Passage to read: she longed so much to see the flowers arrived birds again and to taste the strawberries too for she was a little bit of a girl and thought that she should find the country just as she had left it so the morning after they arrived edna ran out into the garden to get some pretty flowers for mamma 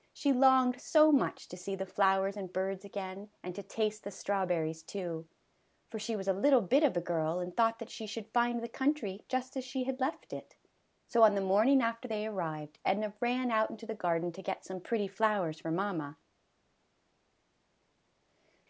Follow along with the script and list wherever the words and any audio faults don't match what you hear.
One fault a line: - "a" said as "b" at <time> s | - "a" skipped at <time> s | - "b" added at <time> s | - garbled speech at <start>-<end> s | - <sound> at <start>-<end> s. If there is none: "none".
- "arrived" said as "and" at 2.4 s
- "on" added at 11.2 s